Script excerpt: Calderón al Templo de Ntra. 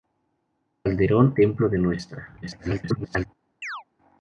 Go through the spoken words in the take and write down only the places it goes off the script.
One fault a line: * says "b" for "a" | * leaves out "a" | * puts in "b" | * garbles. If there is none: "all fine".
* leaves out "al"
* garbles